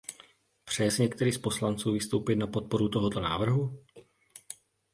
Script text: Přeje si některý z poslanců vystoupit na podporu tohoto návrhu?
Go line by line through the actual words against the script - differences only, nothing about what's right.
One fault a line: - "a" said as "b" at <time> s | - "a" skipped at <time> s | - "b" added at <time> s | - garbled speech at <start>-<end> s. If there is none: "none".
none